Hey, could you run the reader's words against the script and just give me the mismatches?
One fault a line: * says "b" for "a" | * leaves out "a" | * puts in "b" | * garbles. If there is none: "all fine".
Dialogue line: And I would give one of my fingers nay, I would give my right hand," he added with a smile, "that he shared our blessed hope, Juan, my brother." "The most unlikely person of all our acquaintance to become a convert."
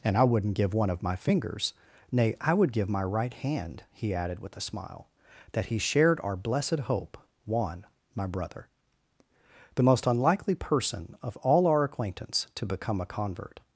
* says "wouldn't" for "would"